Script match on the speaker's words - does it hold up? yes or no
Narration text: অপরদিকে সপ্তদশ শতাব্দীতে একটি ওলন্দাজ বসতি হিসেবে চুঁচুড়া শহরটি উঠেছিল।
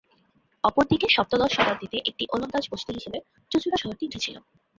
yes